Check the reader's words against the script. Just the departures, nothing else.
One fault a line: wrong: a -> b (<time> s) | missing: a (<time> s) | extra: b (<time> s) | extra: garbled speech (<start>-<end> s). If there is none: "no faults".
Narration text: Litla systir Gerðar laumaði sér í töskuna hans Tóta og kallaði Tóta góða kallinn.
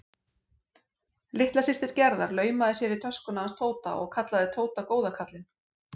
no faults